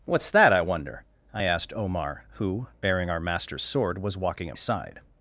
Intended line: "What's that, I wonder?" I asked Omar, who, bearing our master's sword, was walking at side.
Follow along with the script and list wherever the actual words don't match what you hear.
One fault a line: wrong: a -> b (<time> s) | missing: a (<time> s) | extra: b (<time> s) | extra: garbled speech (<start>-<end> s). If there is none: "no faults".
no faults